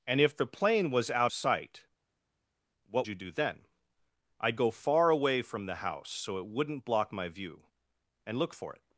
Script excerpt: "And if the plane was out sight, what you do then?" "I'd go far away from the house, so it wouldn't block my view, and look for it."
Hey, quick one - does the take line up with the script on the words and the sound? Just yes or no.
yes